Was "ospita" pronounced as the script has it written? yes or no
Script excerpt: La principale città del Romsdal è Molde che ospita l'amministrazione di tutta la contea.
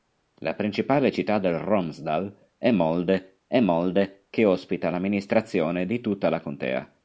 yes